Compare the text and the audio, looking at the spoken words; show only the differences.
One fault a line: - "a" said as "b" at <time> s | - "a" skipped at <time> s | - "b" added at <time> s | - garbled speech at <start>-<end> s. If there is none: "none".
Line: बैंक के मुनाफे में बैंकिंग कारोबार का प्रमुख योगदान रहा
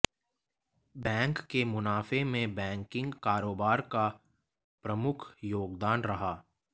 none